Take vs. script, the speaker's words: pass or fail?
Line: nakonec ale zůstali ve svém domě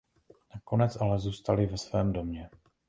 pass